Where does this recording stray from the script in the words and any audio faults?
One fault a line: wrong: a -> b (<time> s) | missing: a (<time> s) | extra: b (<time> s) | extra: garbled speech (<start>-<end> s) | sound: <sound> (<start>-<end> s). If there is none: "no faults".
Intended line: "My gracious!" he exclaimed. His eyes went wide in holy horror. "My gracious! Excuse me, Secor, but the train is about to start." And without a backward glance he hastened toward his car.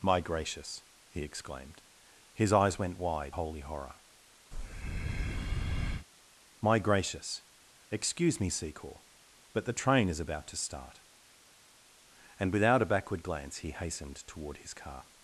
missing: in (3.4 s)
sound: breath (4.5-6.1 s)